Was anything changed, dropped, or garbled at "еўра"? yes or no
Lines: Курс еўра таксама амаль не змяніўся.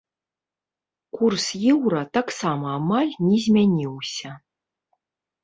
no